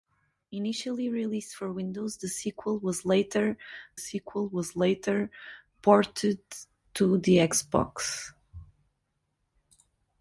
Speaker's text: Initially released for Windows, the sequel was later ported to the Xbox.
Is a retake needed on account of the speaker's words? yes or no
yes